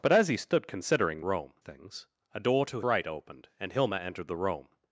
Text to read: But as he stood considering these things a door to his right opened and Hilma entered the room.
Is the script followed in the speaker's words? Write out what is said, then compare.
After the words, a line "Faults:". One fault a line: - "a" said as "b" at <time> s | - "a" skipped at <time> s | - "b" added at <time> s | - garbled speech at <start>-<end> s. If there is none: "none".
But as he stood considering room things a door to right opened and Hilma entered the room.
Faults:
- "these" said as "room" at 1.2 s
- "his" skipped at 2.8 s